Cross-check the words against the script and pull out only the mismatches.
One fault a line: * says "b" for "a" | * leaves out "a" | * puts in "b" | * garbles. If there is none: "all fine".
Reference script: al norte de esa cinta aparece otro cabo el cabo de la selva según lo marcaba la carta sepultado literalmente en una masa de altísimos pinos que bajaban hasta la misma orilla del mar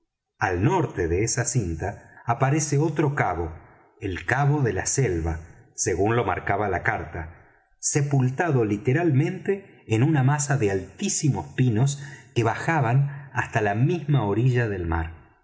all fine